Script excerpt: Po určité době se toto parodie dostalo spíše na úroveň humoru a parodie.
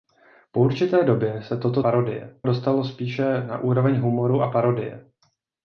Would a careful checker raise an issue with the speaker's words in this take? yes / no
no